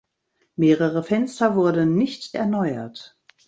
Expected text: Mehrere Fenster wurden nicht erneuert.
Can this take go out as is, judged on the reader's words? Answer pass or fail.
pass